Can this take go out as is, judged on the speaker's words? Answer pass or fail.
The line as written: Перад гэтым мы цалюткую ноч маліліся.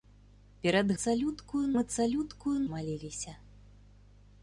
fail